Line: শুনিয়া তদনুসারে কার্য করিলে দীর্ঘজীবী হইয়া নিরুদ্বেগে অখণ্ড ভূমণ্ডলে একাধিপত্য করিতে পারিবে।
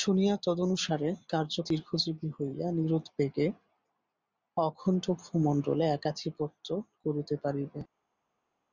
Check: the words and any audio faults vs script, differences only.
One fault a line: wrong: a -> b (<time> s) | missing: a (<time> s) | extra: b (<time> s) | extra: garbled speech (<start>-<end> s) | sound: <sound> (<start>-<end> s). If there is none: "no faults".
missing: করিলে (1.5 s)